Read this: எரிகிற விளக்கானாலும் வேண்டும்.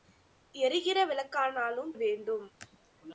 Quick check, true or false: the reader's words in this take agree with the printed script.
true